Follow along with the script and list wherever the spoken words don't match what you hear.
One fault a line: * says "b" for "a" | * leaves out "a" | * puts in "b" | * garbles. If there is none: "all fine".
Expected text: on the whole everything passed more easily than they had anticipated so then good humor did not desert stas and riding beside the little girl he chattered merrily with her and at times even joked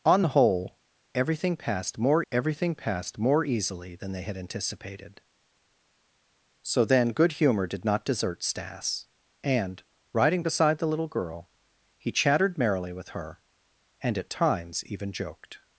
* puts in "everything passed more"